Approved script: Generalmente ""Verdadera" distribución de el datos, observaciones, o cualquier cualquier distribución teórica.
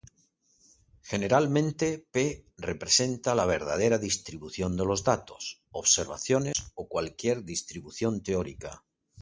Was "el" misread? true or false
true